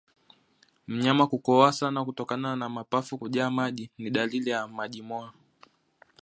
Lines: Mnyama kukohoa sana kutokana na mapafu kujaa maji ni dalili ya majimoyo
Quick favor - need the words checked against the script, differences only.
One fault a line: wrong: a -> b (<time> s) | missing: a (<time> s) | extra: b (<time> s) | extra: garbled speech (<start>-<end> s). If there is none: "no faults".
no faults